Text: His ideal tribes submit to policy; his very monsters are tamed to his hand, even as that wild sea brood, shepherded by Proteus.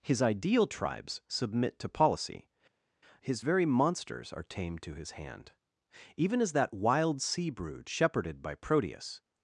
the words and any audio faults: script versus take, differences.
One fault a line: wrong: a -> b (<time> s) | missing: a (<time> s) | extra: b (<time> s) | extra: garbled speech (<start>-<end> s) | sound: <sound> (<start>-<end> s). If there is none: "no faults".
no faults